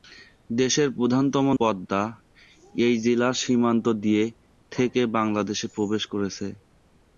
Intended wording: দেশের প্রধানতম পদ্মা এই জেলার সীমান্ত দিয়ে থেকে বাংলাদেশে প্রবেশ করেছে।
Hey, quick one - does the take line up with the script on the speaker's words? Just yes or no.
yes